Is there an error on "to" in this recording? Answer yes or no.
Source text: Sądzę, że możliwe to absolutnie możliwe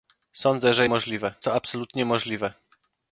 no